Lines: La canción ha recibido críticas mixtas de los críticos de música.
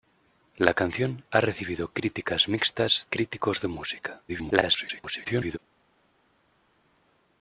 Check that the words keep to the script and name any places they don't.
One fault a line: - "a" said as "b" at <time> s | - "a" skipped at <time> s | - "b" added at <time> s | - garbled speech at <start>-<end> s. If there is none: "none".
- "de los" skipped at 3.1 s
- garbled speech at 4.3-5.6 s